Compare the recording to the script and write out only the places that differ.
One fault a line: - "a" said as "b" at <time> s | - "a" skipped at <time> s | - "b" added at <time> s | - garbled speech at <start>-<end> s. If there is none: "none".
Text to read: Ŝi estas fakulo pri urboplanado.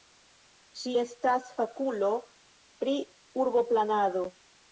none